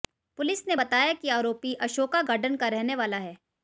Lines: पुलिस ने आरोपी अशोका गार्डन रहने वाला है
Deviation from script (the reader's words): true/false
true